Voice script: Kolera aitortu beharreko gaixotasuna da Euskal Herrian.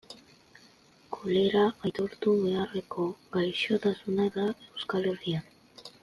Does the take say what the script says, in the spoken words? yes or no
yes